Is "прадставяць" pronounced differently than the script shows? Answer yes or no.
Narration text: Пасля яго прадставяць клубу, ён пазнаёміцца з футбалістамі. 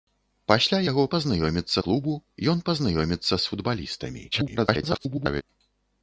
yes